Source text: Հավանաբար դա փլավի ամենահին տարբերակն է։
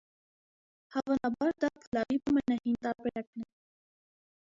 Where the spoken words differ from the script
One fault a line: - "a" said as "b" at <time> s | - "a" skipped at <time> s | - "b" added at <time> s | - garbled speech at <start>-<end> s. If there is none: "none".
none